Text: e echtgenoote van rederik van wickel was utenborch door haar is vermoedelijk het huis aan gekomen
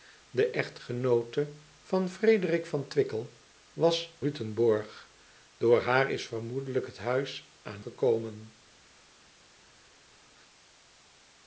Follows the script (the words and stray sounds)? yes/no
yes